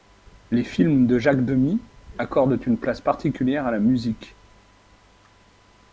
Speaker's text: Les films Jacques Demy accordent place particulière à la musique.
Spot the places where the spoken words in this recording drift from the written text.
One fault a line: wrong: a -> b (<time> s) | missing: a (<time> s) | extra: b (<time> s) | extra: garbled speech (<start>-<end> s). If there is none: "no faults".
extra: de (1.1 s)
extra: une (2.7 s)